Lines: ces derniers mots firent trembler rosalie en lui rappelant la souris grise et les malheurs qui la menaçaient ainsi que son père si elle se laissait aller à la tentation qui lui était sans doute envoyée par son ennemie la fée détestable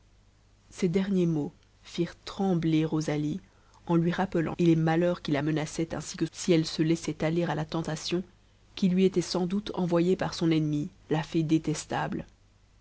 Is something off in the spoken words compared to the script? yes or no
yes